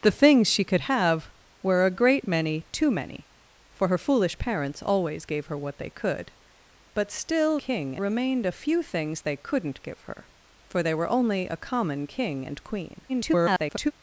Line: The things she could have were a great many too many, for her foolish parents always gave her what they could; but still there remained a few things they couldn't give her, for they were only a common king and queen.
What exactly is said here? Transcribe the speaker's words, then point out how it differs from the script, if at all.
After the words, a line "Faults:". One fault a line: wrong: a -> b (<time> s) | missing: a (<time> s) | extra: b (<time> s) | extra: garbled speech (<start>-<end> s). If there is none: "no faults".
The things she could have were a great many too many, for her foolish parents always gave her what they could; but still king remained a few things they couldn't give her, for they were only a common king and queen. [garbled]
Faults:
wrong: there -> king (7.6 s)
extra: garbled speech (13.1-13.9 s)